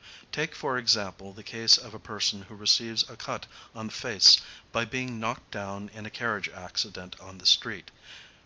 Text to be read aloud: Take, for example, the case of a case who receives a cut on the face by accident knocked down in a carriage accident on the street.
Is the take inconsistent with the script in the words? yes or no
yes